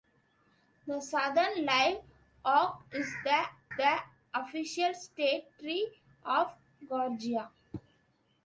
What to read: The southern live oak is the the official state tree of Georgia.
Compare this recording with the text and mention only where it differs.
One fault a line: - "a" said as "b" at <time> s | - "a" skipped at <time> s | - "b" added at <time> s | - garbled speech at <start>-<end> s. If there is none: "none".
none